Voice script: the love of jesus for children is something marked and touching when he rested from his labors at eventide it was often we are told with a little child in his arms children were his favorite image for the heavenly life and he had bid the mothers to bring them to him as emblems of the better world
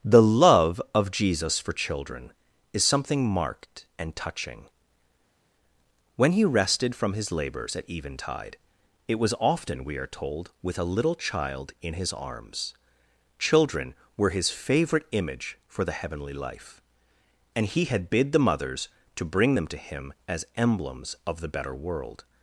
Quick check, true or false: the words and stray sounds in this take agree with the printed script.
true